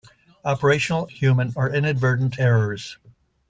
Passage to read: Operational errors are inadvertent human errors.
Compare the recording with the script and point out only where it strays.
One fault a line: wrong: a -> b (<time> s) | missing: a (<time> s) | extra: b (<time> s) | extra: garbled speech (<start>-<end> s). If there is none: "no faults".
wrong: errors -> human (1.0 s)
missing: human (2.3 s)